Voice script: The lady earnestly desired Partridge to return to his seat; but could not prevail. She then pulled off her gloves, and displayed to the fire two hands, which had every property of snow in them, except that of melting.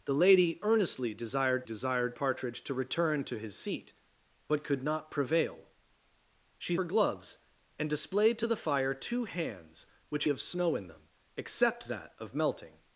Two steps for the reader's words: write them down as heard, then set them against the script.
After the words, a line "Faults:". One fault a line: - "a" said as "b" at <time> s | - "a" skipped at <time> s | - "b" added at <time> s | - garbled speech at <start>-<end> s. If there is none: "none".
The lady earnestly desired desired Partridge to return to his seat; but could not prevail. She her gloves, and displayed to the fire two hands, which of snow in them, except that of melting.
Faults:
- "desired" added at 1.6 s
- "then pulled off" skipped at 6.7 s
- "had every property" skipped at 10.2 s